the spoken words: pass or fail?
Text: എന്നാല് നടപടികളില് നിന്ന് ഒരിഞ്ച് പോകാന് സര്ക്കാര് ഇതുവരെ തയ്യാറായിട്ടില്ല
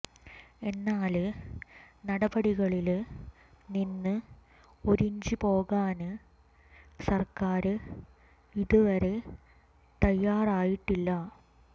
pass